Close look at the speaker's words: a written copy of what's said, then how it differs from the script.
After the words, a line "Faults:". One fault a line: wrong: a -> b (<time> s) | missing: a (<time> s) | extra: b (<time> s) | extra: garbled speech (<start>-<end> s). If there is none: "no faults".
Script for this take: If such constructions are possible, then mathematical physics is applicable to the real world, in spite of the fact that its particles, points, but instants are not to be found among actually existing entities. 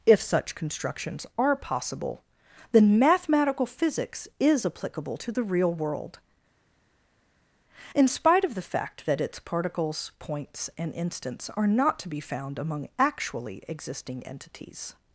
If such constructions are possible, then mathematical physics is applicable to the real world, in spite of the fact that its particles, points, and instants are not to be found among actually existing entities.
Faults:
wrong: but -> and (10.8 s)